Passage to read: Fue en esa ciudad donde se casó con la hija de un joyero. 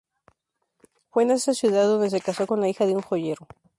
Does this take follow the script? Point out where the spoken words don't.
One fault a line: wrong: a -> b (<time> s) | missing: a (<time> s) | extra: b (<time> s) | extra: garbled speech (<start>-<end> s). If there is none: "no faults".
no faults